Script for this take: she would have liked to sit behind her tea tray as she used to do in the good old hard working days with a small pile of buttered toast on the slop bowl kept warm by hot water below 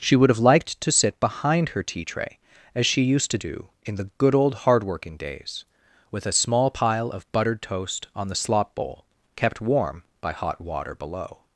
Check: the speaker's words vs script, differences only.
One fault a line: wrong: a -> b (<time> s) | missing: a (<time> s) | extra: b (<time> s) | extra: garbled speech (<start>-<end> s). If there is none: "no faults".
no faults